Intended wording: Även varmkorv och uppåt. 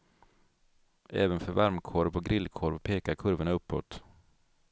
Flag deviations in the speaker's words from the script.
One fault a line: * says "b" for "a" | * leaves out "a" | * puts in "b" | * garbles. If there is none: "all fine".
* puts in "för"
* puts in "grillkorv pekar kurvorna"